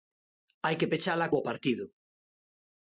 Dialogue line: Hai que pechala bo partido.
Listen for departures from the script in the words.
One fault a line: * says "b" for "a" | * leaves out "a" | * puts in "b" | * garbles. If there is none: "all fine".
all fine